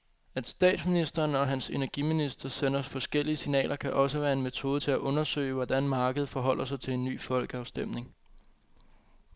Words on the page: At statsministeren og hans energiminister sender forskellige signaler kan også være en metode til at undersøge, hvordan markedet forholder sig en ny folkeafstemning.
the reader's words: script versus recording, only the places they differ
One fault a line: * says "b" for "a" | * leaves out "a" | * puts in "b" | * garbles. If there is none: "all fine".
* puts in "til"